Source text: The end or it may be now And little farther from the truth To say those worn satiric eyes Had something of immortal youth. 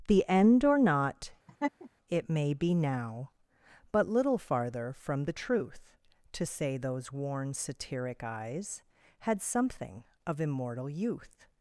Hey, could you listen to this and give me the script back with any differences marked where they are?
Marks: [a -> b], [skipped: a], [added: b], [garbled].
The end or [added: not] it may be now [And -> But] little farther from the truth To say those worn satiric eyes Had something of immortal youth.